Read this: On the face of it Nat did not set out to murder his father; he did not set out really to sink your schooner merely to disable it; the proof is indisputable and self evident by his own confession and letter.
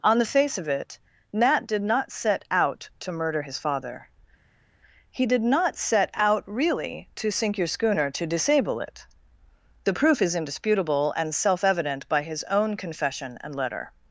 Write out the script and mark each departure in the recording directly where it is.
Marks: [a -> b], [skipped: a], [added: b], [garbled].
On the face of it Nat did not set out to murder his father; he did not set out really to sink your schooner [skipped: merely] to disable it; the proof is indisputable and self evident by his own confession and letter.